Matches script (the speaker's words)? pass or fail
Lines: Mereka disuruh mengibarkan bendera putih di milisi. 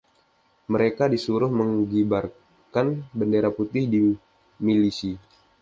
pass